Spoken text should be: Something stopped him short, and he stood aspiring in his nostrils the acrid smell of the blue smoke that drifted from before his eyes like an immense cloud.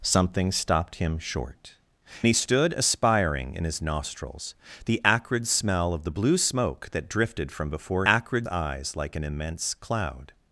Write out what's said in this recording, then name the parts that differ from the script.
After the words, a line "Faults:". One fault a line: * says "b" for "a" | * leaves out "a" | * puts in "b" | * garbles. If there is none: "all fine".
Something stopped him short, he stood aspiring in his nostrils the acrid smell of the blue smoke that drifted from before acrid eyes like an immense cloud.
Faults:
* leaves out "and"
* says "acrid" for "his"